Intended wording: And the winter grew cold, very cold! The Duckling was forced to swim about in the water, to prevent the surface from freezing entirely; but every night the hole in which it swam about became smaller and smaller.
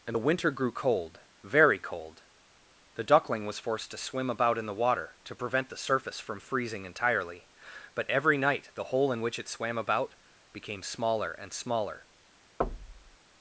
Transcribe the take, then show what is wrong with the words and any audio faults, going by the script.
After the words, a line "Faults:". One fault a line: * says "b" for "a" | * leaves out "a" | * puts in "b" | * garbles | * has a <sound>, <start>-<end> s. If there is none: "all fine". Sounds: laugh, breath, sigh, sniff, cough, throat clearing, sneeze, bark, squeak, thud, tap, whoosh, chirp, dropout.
And the winter grew cold, very cold! The Duckling was forced to swim about in the water, to prevent the surface from freezing entirely; but every night the hole in which it swam about became smaller and smaller.
Faults:
* has a thud, 12.6-13.2 s